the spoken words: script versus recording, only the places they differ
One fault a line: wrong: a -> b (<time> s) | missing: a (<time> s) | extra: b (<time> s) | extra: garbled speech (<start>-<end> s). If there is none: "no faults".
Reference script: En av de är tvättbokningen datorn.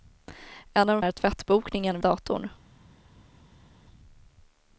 no faults